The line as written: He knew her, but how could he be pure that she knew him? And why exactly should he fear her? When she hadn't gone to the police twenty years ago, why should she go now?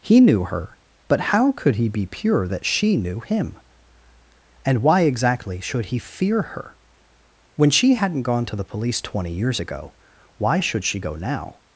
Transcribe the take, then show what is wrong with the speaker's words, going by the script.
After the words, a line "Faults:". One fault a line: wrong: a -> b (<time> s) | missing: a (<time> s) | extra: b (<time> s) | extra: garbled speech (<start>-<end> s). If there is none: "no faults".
He knew her, but how could he be pure that she knew him? And why exactly should he fear her? When she hadn't gone to the police twenty years ago, why should she go now?
Faults:
no faults